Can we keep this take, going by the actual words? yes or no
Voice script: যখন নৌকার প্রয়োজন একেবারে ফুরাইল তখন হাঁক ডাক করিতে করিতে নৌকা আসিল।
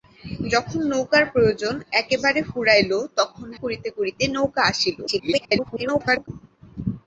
no